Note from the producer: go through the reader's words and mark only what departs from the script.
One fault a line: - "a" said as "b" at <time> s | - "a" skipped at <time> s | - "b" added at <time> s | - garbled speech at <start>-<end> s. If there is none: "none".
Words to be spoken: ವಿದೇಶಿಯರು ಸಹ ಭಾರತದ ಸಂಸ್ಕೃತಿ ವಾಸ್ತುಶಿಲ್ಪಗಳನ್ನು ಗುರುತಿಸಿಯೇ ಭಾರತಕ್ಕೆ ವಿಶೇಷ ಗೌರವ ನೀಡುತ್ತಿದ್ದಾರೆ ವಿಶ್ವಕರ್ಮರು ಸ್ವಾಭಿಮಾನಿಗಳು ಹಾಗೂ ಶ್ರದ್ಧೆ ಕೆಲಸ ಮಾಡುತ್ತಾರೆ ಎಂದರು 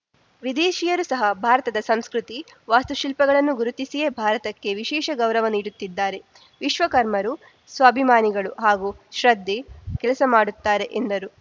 none